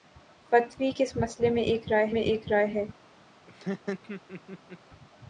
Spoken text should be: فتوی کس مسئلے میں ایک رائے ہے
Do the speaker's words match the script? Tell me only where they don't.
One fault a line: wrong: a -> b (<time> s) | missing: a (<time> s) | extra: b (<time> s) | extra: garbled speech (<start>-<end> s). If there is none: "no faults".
extra: میں ایک رائے (2.1 s)